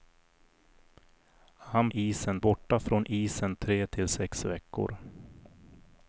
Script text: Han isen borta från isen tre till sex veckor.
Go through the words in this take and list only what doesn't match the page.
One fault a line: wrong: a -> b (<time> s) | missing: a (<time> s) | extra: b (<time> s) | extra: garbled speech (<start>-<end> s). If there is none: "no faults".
no faults